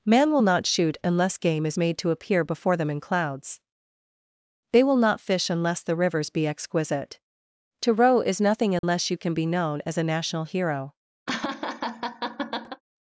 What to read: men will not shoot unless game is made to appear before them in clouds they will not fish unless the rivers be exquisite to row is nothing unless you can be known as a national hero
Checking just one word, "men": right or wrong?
wrong